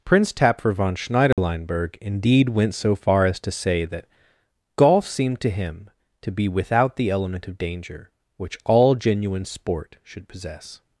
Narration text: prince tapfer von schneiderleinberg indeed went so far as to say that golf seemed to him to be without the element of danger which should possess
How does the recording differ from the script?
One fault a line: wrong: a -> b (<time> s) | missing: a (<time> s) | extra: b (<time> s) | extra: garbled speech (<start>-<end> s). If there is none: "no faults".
extra: all genuine sport (8.7 s)